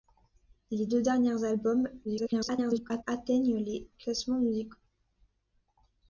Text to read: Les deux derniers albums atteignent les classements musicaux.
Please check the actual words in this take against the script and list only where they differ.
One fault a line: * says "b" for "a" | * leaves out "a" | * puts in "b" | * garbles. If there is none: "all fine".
* garbles